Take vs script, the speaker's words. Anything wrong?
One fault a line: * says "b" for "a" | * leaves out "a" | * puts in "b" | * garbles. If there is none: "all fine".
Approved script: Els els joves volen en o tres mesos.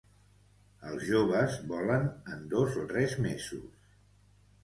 * leaves out "els"
* puts in "dos"